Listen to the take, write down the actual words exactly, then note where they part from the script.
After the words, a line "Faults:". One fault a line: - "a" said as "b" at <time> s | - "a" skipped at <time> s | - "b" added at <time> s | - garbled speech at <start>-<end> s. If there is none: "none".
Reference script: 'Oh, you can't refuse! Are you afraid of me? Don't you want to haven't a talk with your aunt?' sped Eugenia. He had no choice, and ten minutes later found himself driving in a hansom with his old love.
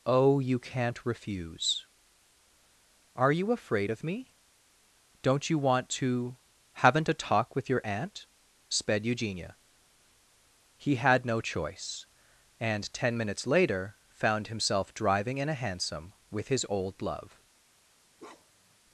'Oh, you can't refuse! Are you afraid of me? Don't you want to haven't a talk with your aunt?' sped Eugenia. He had no choice, and ten minutes later found himself driving in a hansom with his old love.
Faults:
none